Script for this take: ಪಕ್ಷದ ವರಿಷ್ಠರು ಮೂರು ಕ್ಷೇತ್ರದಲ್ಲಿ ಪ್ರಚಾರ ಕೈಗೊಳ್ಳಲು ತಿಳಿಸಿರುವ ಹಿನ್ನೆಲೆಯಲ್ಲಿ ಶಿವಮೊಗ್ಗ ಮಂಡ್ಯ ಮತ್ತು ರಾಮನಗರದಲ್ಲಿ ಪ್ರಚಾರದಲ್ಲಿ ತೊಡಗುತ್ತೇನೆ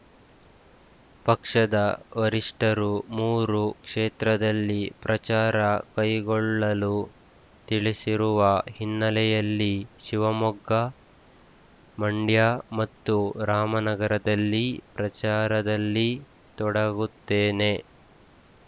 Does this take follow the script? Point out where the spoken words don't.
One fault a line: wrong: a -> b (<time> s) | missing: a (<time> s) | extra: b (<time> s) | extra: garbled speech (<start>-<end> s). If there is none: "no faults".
no faults